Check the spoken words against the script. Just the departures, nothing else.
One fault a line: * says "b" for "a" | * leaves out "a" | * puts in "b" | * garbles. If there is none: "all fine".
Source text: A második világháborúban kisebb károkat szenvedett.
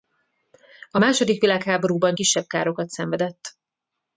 all fine